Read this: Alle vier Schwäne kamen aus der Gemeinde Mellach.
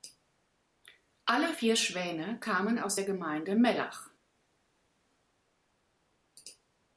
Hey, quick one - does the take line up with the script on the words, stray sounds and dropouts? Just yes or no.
yes